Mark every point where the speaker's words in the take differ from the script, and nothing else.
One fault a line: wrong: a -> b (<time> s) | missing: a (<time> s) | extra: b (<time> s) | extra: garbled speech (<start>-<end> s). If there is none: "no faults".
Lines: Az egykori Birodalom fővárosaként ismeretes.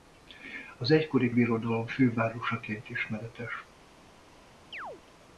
no faults